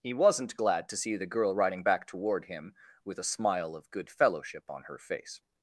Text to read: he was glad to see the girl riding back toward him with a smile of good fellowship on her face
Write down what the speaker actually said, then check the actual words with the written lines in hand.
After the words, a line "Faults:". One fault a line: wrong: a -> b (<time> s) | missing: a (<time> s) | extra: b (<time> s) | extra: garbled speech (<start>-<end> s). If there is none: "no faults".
he wasn't glad to see the girl riding back toward him with a smile of good fellowship on her face
Faults:
wrong: was -> wasn't (0.1 s)